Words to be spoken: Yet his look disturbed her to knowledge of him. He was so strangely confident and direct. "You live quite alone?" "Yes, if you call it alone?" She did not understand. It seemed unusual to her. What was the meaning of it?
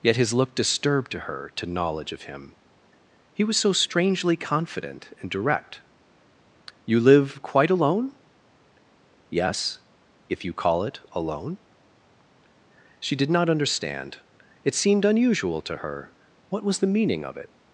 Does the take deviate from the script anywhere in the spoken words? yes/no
yes